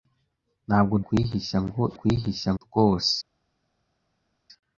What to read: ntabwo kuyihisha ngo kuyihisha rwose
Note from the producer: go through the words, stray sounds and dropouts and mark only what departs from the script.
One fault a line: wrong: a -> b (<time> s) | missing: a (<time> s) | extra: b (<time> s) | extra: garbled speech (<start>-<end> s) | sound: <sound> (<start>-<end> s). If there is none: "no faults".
no faults